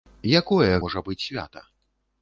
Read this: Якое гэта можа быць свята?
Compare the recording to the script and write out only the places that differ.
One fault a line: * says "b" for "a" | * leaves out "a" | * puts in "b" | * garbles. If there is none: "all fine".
* leaves out "гэта"